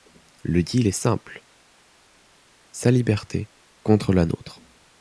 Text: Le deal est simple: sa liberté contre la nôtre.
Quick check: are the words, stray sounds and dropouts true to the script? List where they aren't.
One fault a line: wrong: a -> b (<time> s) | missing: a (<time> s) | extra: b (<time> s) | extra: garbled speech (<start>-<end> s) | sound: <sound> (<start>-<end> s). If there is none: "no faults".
no faults